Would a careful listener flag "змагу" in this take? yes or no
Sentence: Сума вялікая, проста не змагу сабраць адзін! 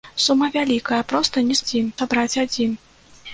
yes